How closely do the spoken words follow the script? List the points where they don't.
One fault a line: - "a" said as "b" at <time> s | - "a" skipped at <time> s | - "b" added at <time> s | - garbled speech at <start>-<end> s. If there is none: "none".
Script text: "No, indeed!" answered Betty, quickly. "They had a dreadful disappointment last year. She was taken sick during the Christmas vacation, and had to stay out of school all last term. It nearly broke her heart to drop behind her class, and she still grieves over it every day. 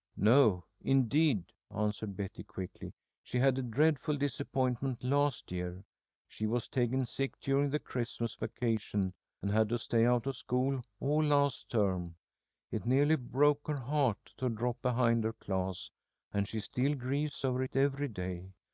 - "They" said as "She" at 3.2 s